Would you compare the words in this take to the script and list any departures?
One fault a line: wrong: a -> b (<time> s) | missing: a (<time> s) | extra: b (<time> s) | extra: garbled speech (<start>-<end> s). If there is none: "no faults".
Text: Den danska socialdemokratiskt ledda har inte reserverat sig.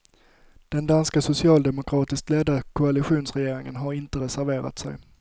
extra: koalitionsregeringen (2.6 s)